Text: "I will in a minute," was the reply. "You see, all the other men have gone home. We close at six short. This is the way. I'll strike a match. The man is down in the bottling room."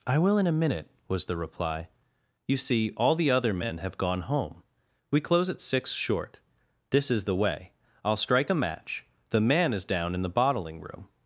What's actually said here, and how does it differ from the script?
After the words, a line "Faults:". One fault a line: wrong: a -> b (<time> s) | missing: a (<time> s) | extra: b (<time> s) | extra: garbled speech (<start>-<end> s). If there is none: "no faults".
"I will in a minute," was the reply. "You see, all the other men have gone home. We close at six short. This is the way. I'll strike a match. The man is down in the bottling room."
Faults:
no faults